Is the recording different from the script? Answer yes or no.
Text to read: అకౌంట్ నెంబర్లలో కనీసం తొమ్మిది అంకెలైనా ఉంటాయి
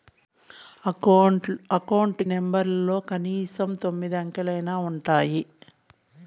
no